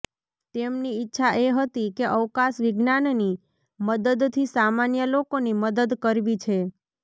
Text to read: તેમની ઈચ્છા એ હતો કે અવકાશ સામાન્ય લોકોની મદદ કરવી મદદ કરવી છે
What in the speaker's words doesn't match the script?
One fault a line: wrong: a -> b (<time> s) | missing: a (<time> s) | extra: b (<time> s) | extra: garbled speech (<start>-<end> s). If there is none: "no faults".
wrong: હતો -> હતી (1.6 s)
extra: વિજ્ઞાનની મદદથી (2.6 s)
missing: મદદ કરવી (6.4 s)